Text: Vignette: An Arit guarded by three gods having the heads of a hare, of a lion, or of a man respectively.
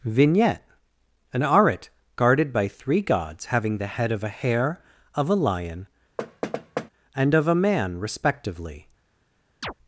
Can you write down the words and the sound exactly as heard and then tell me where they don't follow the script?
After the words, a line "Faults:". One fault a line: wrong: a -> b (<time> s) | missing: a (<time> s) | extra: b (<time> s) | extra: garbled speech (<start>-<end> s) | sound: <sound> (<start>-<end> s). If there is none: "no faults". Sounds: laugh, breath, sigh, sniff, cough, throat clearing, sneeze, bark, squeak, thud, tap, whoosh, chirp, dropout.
Vignette: An Arit guarded by three gods having the head of a hare, of a lion, and of a man respectively.
Faults:
wrong: heads -> head (3.9 s)
sound: thud (6.2-6.9 s)
wrong: or -> and (7.1 s)
sound: chirp (9.6-9.7 s)